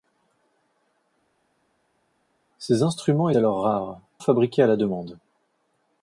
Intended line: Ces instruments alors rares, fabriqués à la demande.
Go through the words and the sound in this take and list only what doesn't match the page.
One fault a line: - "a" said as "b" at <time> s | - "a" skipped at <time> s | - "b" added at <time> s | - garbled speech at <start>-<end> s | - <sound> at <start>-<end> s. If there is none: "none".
none